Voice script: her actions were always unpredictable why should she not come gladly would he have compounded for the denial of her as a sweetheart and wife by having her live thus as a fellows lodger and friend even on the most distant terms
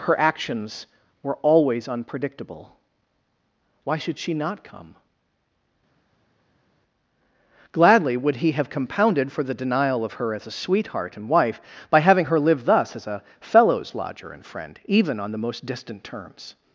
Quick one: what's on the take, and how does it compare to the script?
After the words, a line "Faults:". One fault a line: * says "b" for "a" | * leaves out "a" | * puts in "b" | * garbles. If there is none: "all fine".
her actions were always unpredictable why should she not come gladly would he have compounded for the denial of her as a sweetheart and wife by having her live thus as a fellows lodger and friend even on the most distant terms
Faults:
all fine